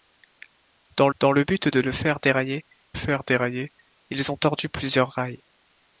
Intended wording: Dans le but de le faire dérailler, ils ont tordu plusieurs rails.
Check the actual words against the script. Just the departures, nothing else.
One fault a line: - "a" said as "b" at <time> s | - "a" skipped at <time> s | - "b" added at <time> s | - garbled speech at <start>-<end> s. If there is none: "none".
- "dans" added at 1.2 s
- "faire dérailler" added at 2.9 s